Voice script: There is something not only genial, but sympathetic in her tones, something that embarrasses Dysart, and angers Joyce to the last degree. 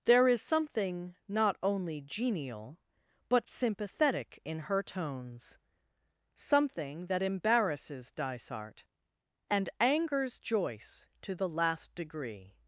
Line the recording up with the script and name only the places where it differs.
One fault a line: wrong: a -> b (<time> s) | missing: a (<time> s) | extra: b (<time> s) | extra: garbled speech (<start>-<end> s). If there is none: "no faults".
no faults